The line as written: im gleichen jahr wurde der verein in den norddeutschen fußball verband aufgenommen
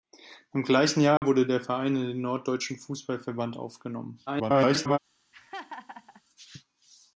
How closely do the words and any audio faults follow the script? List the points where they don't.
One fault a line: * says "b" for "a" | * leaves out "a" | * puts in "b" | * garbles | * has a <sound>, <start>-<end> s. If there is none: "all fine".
* has a dropout, 1.2-1.2 s
* garbles
* has a laugh, 5.3-6.2 s